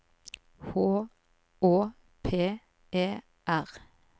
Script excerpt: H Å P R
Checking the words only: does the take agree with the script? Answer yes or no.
no